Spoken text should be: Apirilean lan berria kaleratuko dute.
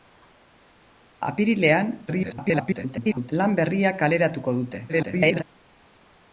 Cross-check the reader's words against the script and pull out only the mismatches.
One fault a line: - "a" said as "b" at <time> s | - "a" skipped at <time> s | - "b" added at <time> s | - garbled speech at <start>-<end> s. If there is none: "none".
- garbled speech at 2.1-3.3 s
- garbled speech at 4.9-5.4 s